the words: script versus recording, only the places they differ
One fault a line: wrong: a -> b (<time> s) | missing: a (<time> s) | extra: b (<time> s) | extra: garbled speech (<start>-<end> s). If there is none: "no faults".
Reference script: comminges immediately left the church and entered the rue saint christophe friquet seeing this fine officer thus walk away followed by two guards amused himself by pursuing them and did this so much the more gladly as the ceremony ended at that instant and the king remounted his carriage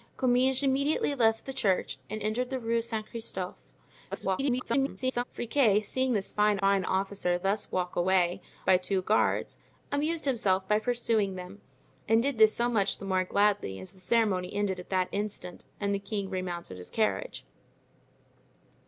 extra: garbled speech (4.1-5.2 s)
extra: fine (6.6 s)
missing: followed (8.4 s)